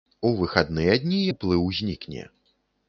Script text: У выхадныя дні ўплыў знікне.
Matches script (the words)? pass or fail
pass